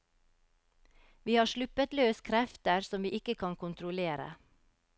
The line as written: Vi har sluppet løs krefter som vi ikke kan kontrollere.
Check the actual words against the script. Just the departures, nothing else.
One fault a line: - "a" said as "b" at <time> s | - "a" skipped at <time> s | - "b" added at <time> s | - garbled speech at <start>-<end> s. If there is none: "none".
none